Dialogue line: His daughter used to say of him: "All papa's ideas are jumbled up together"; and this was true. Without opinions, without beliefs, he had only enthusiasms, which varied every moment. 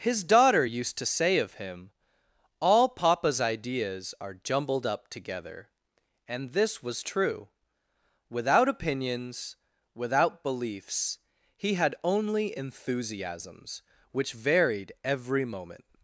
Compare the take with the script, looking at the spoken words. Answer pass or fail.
pass